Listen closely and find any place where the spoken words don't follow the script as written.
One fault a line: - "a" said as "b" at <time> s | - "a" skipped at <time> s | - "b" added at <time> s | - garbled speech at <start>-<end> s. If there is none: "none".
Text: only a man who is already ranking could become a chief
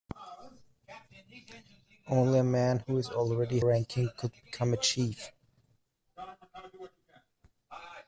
none